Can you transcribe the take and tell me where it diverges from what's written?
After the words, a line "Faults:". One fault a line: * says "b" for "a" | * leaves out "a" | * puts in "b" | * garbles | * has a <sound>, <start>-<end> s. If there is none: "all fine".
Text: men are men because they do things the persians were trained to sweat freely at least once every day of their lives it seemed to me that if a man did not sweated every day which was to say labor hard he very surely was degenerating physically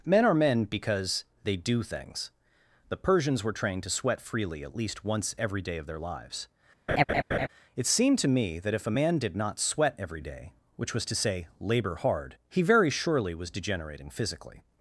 men are men because they do things the persians were trained to sweat freely at least once every day of their lives it seemed to me that if a man did not sweat every day which was to say labor hard he very surely was degenerating physically
Faults:
* has a laugh, 6.9-7.5 s
* says "sweat" for "sweated"